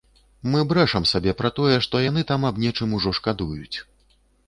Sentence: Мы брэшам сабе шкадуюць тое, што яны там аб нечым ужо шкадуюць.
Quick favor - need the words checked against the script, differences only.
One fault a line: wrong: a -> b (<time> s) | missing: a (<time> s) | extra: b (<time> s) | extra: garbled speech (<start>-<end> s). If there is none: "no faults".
wrong: шкадуюць -> пра (1.4 s)